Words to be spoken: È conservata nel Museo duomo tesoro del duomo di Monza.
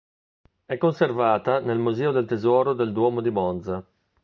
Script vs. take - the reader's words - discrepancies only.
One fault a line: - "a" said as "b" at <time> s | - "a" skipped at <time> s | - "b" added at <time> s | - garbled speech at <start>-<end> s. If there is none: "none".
- "duomo" said as "del" at 2.1 s